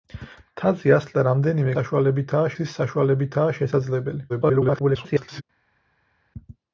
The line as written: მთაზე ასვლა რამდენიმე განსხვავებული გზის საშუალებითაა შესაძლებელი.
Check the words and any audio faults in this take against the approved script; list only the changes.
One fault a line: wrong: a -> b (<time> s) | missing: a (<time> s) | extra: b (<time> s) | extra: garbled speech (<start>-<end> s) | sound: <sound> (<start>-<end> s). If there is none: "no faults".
wrong: განსხვავებული -> საშუალებითაა (1.8 s)
extra: garbled speech (4.3-5.4 s)